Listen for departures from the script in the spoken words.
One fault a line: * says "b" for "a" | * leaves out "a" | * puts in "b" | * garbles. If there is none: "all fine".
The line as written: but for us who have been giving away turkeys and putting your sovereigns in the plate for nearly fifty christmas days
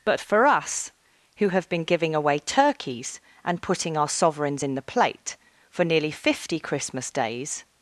* says "our" for "your"